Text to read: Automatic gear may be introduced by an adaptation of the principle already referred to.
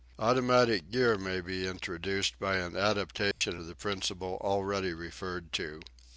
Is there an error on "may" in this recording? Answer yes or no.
no